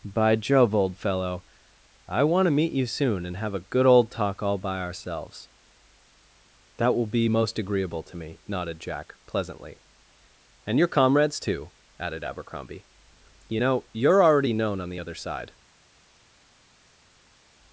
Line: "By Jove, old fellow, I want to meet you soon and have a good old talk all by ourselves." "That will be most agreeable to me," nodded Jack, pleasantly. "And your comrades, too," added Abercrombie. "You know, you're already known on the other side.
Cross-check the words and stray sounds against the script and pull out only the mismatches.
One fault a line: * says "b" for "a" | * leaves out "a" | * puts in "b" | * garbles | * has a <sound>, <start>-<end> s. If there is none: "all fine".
all fine